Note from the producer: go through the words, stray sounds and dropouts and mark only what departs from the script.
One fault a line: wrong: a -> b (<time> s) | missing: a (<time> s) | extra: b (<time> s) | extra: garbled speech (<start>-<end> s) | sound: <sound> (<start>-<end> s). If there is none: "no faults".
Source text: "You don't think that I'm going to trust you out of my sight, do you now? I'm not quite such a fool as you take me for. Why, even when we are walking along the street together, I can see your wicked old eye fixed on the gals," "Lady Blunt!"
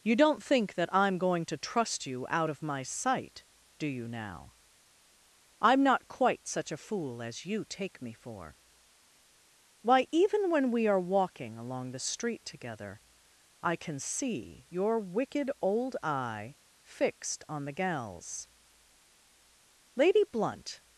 no faults